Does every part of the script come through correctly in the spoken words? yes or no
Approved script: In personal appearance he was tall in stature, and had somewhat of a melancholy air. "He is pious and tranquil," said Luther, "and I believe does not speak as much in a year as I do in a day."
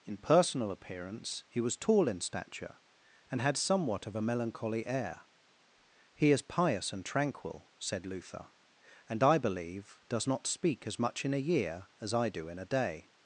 yes